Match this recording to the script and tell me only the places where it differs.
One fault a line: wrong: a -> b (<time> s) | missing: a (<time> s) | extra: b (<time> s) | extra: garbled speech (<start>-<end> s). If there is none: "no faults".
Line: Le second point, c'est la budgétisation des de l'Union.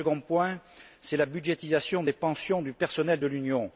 extra: pensions du personnel (2.1 s)